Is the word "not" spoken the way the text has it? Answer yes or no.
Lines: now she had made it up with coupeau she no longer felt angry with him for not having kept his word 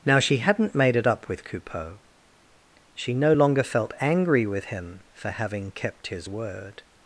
no